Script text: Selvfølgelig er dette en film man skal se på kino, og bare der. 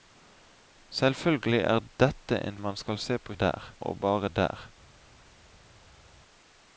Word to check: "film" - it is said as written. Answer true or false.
false